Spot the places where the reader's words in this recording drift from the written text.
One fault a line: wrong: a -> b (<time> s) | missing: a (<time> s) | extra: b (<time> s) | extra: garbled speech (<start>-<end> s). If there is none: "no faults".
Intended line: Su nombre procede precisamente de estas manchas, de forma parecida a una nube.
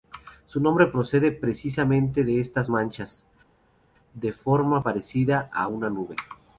no faults